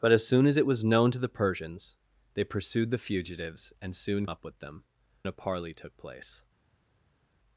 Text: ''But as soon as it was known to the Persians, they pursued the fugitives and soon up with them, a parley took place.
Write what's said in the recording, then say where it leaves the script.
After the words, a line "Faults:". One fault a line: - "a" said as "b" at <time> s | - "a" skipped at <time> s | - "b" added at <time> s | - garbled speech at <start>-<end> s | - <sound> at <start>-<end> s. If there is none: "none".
''But as soon as it was known to the Persians, they pursued the fugitives and soon up with them, a parley took place.
Faults:
none